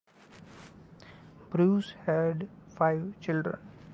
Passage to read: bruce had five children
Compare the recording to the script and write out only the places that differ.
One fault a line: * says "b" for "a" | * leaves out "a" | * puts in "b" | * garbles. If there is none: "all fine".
all fine